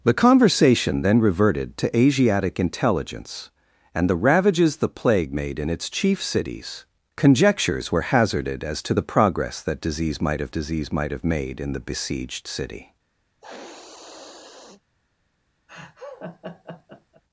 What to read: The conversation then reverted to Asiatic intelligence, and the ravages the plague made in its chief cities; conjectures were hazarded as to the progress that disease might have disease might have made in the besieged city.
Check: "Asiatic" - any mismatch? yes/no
no